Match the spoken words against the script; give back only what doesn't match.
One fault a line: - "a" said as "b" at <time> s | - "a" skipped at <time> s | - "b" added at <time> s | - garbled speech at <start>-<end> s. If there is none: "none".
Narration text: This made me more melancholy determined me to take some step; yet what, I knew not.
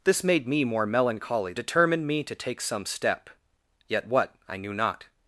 none